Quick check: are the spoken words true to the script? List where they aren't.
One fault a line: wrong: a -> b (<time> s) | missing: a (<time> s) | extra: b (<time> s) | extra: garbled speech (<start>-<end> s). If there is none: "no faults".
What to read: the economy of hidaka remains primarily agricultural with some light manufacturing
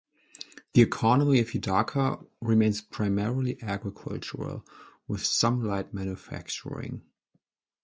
no faults